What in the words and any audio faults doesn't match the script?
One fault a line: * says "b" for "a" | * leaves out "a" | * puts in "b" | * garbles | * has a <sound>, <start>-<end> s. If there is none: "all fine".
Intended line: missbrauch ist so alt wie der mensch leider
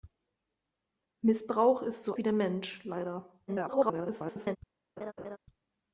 * leaves out "alt"
* garbles
* has a laugh, 5.0-5.4 s